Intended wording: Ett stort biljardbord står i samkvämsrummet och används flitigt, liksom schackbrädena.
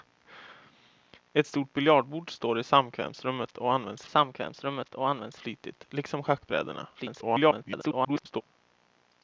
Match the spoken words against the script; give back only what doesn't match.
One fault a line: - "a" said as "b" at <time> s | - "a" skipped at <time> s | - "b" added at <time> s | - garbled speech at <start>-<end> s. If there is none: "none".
- "samkvämsrummet och används" added at 4.1 s
- garbled speech at 6.9-8.4 s